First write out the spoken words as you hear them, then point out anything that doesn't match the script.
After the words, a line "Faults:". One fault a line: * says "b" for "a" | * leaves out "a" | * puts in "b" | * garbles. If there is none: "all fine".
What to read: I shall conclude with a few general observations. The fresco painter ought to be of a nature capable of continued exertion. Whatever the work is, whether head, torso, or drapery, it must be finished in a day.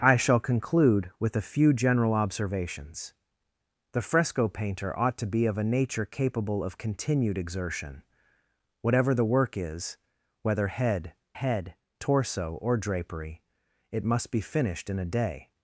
I shall conclude with a few general observations. The fresco painter ought to be of a nature capable of continued exertion. Whatever the work is, whether head head, torso, or drapery, it must be finished in a day.
Faults:
* puts in "head"